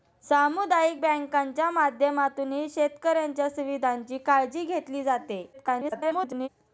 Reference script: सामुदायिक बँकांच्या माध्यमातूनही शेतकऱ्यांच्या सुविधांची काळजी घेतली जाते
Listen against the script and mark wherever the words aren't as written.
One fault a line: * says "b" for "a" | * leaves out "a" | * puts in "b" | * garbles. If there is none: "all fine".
* garbles